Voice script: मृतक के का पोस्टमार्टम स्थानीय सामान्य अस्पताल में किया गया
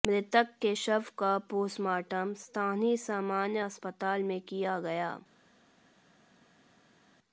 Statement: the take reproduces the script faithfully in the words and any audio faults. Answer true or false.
false